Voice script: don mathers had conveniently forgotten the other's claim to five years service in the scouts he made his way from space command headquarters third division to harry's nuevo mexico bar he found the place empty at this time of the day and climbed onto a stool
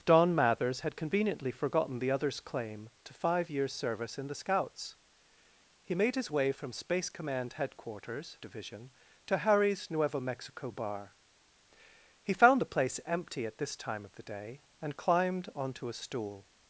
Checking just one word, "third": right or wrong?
wrong